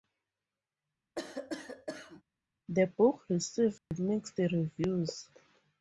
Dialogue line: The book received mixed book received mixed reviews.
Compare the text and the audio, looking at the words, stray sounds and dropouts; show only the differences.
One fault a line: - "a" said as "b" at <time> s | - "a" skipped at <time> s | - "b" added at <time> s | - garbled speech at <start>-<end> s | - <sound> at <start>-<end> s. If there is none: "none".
- cough at 1.2-2.2 s
- dropout at 3.8-3.9 s
- "book received mixed" skipped at 4.4 s